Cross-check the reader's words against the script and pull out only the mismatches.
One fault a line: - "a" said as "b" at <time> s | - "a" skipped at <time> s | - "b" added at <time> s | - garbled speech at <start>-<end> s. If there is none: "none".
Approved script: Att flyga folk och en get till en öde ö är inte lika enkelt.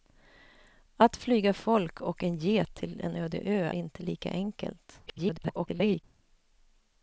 - "är" skipped at 3.7 s
- garbled speech at 5.1-6.0 s